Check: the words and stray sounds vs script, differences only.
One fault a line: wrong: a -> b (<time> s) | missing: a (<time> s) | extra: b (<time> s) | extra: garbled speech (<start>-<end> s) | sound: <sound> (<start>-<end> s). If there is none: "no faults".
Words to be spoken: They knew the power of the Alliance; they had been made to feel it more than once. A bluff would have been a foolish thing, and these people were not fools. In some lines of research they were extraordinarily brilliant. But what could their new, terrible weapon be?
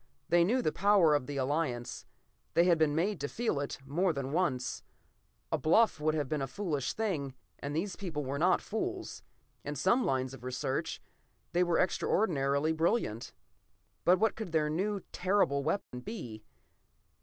sound: dropout (15.8-15.9 s)